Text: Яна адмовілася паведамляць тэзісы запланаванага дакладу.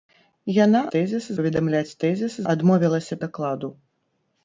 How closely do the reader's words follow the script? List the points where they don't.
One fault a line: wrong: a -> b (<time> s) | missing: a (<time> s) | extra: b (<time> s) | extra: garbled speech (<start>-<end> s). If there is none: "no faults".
wrong: адмовілася -> тэзісы (0.9 s)
wrong: запланаванага -> адмовілася (2.5 s)